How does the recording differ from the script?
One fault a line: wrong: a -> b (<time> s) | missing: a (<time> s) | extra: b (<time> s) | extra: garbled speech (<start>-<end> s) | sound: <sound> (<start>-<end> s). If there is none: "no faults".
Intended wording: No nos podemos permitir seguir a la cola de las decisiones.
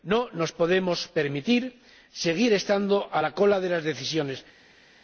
extra: estando (2.5 s)